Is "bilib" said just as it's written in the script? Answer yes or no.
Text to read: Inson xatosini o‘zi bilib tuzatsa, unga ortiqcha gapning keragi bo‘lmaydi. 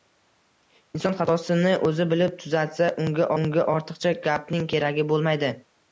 yes